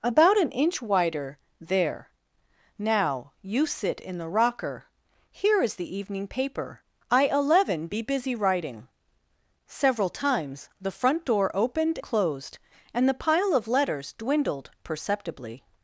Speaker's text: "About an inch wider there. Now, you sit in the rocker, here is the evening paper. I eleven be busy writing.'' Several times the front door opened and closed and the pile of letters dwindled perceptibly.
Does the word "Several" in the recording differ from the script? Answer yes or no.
no